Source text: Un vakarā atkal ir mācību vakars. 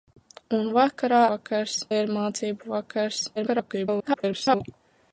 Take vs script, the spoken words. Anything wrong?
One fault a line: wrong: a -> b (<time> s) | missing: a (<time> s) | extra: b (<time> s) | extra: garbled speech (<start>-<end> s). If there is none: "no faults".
wrong: atkal -> vakars (1.3 s)
extra: garbled speech (3.4-4.6 s)